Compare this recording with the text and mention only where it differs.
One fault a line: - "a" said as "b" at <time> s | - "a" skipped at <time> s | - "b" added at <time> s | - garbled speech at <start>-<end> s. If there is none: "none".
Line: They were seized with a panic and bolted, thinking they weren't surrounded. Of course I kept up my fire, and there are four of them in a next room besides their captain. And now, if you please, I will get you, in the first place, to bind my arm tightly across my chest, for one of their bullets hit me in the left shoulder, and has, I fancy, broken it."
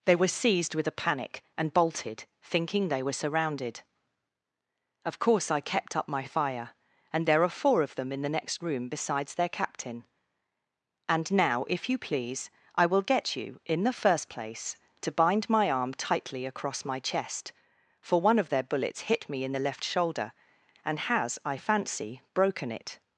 - "weren't" said as "were" at 3.0 s
- "a" said as "the" at 8.2 s